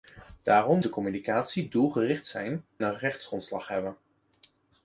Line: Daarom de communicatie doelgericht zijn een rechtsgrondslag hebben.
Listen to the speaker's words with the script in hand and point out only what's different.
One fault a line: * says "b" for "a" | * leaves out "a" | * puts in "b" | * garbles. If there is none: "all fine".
all fine